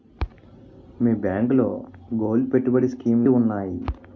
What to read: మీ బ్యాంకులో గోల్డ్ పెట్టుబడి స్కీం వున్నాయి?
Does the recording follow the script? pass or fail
pass